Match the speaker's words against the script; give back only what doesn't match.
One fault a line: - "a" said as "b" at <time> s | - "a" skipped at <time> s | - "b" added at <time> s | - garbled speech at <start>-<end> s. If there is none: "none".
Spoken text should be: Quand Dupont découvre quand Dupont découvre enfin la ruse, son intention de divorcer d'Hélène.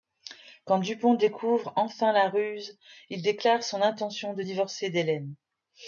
- "quand Dupont découvre" skipped at 1.7 s
- "il déclare" added at 3.1 s